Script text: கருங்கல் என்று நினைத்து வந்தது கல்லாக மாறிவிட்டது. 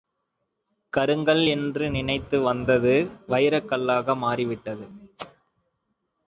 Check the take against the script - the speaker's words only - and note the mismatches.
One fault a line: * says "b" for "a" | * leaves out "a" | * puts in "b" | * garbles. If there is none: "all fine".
* puts in "வைரக்"